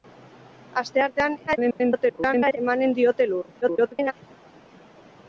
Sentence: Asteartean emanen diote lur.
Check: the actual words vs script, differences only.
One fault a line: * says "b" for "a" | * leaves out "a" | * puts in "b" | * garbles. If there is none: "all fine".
* garbles
* garbles